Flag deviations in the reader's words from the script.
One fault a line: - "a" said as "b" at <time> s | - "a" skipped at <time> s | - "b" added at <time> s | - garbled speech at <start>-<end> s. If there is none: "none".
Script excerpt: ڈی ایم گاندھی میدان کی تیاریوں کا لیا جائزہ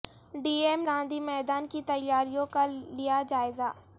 none